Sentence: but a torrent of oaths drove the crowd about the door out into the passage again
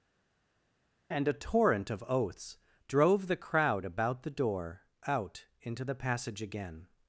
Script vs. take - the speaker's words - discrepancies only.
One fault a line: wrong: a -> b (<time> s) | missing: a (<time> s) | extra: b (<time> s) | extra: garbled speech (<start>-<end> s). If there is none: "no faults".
wrong: but -> and (1.1 s)